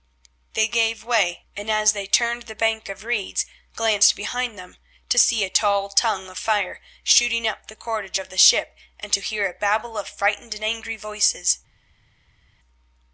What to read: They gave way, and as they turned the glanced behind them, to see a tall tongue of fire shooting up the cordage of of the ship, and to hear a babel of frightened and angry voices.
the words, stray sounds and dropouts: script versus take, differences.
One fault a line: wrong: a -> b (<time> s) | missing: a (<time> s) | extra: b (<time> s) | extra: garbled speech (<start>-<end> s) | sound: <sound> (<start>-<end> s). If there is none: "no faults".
extra: bank of reeds (2.5 s)
missing: of (8.3 s)